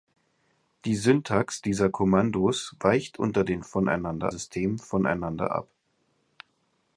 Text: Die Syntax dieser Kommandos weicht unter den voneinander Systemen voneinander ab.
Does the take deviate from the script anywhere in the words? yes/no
no